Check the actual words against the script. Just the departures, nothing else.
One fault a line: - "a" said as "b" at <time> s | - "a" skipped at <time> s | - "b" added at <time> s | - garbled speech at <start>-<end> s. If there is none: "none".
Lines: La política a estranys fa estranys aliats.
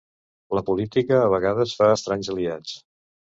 - "estranys" said as "vegades" at 1.3 s